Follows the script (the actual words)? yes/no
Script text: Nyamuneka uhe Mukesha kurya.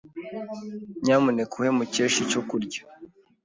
no